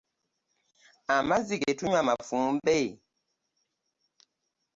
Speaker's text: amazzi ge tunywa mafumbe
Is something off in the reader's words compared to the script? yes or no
no